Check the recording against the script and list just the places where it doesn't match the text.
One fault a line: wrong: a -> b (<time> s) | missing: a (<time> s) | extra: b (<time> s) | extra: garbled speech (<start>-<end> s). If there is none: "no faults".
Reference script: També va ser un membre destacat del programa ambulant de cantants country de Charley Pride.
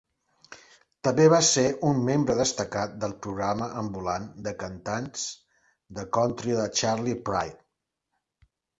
extra: de (6.0 s)